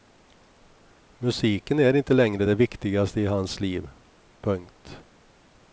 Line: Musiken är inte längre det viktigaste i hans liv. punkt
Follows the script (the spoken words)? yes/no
yes